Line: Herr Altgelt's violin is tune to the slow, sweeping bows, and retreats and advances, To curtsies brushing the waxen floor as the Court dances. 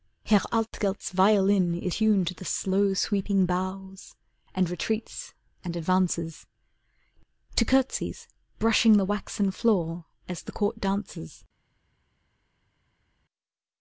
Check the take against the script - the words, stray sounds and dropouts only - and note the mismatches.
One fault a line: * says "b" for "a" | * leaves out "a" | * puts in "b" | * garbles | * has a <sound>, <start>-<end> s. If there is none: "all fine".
all fine